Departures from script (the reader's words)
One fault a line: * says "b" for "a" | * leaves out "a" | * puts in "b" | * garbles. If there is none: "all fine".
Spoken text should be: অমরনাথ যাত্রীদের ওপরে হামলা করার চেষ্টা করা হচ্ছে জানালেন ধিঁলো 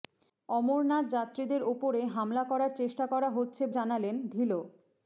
all fine